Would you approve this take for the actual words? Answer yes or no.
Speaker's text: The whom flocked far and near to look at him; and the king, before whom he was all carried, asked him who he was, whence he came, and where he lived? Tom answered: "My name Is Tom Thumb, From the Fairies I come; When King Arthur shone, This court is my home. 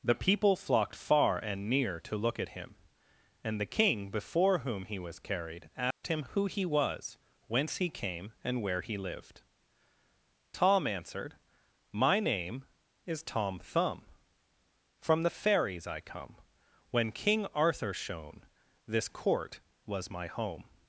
no